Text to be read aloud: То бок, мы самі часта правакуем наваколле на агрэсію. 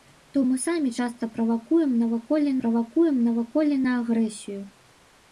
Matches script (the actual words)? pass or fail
fail